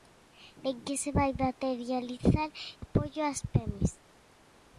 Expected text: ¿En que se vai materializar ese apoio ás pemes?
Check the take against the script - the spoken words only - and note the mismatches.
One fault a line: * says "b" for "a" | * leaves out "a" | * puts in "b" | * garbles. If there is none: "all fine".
* leaves out "ese"